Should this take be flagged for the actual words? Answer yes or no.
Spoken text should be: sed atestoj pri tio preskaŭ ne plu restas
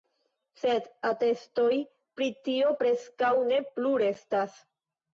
no